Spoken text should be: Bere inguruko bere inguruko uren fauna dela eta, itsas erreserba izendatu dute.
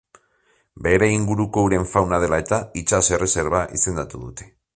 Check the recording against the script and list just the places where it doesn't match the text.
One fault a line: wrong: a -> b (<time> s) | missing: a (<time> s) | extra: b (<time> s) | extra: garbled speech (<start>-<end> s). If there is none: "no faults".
missing: bere inguruko (1.6 s)